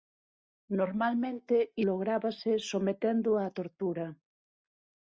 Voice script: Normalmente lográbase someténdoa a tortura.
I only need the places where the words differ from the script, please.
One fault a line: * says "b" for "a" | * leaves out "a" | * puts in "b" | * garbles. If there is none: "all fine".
all fine